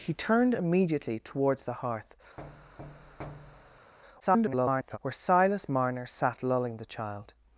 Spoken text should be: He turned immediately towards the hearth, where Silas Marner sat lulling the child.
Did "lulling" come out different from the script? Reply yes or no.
no